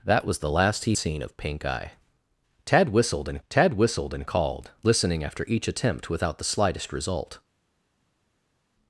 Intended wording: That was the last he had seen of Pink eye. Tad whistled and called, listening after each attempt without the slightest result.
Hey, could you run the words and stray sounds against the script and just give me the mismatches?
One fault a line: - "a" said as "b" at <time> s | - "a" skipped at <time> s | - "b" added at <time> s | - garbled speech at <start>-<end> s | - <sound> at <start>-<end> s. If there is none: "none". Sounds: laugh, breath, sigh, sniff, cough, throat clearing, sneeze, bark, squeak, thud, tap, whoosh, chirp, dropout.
- "had" skipped at 0.9 s
- "tad whistled and" added at 3.5 s